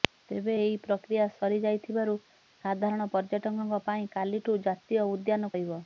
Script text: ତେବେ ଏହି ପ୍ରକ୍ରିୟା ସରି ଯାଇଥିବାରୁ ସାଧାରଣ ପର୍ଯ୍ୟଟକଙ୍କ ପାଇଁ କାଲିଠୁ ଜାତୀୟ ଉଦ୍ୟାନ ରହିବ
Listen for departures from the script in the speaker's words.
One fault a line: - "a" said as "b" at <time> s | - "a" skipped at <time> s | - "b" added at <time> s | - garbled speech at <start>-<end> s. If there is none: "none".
none